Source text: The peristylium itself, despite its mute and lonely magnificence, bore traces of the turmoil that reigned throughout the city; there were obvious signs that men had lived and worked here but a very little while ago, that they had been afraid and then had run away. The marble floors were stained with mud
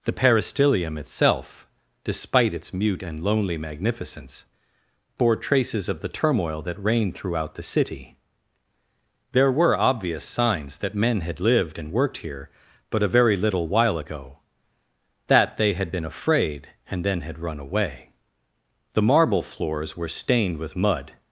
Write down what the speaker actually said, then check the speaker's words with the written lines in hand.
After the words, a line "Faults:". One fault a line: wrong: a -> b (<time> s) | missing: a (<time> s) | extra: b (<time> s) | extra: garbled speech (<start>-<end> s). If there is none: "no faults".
The peristylium itself, despite its mute and lonely magnificence, bore traces of the turmoil that reigned throughout the city; there were obvious signs that men had lived and worked here but a very little while ago, that they had been afraid and then had run away. The marble floors were stained with mud
Faults:
no faults